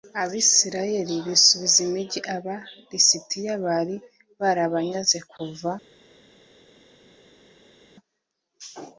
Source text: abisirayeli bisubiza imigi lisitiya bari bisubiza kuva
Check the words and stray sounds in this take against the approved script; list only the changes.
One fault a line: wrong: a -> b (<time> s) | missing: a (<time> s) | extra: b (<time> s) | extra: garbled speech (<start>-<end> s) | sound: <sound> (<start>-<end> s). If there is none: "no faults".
extra: aba (2.4 s)
wrong: bisubiza -> barabanyaze (4.4 s)